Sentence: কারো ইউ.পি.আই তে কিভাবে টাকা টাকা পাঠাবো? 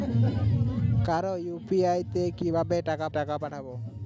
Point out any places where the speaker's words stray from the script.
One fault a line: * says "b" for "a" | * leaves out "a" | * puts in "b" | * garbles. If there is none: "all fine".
all fine